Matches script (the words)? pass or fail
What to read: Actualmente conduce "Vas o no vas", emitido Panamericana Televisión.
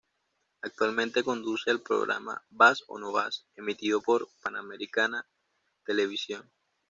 fail